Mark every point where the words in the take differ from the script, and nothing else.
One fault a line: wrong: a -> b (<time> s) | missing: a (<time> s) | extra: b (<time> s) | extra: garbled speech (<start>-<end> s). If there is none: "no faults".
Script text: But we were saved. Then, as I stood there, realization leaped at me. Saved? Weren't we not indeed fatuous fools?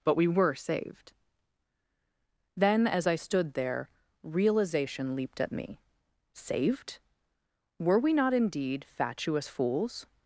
wrong: Weren't -> Were (7.8 s)